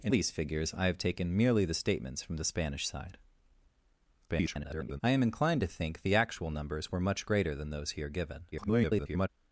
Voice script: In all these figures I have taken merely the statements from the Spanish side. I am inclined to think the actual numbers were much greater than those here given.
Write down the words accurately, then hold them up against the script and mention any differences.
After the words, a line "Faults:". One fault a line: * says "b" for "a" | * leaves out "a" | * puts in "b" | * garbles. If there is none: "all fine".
In these figures I have taken merely the statements from the Spanish side. [garbled] I am inclined to think the actual numbers were much greater than those here given. [garbled]
Faults:
* leaves out "all"
* garbles
* garbles